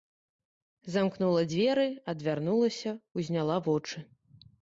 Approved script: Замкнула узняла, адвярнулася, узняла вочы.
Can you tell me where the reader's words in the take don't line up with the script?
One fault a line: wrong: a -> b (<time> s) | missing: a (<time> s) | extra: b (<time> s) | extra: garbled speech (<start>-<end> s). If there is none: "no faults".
wrong: узняла -> дзверы (1.5 s)